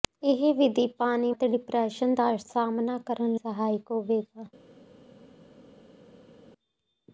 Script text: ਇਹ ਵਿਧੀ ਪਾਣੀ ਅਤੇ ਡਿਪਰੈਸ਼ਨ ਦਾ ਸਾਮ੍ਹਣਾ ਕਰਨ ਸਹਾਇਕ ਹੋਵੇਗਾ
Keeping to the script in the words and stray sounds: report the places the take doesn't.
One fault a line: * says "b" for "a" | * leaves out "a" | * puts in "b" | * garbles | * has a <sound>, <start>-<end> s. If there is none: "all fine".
all fine